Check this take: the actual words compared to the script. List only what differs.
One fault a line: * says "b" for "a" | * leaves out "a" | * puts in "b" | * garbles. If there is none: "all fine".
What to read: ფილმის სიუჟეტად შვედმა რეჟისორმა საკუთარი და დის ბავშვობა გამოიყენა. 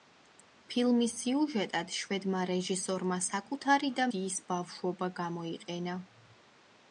all fine